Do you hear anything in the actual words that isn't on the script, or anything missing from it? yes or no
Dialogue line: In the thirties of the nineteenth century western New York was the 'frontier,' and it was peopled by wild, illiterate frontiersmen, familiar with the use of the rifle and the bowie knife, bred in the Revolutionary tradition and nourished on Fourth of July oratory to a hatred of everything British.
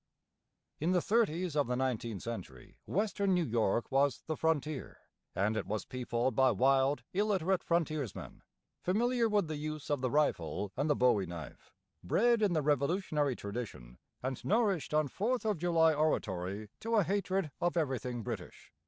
no